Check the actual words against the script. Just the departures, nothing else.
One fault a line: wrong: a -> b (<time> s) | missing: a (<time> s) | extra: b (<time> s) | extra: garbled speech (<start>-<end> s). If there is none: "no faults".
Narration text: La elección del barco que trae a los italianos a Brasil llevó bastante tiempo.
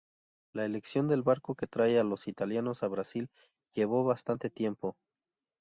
no faults